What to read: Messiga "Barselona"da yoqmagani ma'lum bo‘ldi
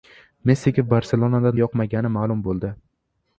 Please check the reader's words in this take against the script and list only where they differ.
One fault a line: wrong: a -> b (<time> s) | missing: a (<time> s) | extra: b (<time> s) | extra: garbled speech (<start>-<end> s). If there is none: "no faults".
no faults